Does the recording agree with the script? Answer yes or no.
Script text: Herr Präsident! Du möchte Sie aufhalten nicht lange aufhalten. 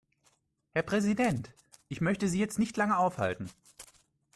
no